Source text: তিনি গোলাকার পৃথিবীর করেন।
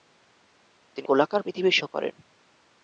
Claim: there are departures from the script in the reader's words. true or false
false